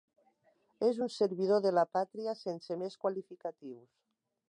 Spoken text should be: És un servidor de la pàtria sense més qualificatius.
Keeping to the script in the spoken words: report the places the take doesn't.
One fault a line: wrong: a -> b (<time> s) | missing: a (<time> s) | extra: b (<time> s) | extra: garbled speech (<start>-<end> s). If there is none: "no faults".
no faults